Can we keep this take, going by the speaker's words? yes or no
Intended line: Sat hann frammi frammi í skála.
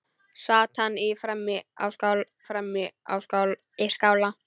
yes